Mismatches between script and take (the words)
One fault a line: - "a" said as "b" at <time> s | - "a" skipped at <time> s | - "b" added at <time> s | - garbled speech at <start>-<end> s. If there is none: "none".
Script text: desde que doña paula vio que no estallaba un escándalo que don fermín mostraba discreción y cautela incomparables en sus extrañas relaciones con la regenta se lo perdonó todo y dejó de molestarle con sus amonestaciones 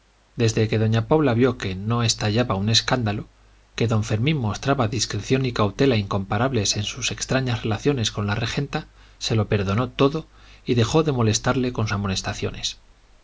- "sus" skipped at 11.9 s